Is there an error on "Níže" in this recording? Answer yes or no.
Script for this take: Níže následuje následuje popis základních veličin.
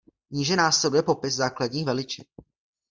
no